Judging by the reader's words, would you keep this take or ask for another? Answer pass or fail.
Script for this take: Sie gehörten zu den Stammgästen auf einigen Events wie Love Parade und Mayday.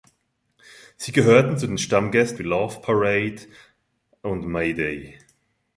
fail